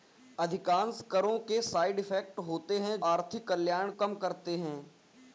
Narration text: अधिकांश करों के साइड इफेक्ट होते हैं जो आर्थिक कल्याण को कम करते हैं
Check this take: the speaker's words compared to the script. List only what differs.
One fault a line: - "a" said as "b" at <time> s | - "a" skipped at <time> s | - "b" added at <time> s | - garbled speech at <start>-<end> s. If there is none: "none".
- "जो" skipped at 3.0 s
- "को" skipped at 3.9 s